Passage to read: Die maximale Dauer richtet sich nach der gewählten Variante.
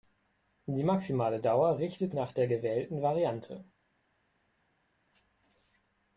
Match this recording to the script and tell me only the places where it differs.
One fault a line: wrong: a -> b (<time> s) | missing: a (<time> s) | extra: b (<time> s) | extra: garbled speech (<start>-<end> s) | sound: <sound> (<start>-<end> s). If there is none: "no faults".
missing: sich (2.1 s)